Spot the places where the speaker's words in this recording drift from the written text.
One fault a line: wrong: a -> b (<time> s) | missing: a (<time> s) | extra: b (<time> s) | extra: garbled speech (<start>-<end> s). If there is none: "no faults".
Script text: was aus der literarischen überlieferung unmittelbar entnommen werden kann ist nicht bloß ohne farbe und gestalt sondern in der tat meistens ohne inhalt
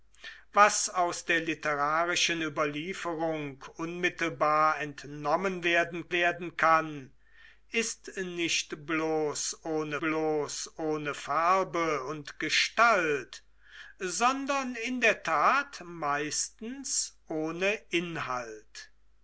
extra: werden (6.1 s)
extra: bloß ohne (10.0 s)